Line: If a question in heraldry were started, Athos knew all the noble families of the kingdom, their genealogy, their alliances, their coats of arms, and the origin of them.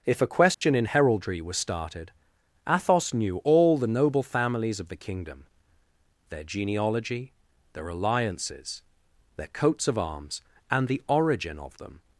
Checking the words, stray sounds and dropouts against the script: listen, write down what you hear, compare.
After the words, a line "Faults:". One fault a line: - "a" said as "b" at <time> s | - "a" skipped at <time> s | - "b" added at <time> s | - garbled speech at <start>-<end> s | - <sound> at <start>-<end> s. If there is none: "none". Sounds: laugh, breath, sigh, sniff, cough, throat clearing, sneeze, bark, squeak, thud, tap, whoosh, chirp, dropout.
If a question in heraldry was started, Athos knew all the noble families of the kingdom, their genealogy, their alliances, their coats of arms, and the origin of them.
Faults:
- dropout at 0.5-0.6 s
- "were" said as "was" at 1.4 s